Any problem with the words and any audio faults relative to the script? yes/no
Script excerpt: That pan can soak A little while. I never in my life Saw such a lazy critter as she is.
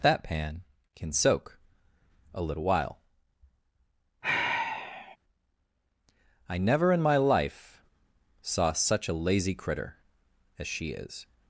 yes